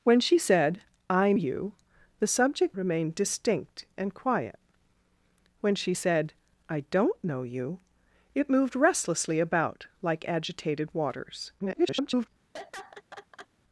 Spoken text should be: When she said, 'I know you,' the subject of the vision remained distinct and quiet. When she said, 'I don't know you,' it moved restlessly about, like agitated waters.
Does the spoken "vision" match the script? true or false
false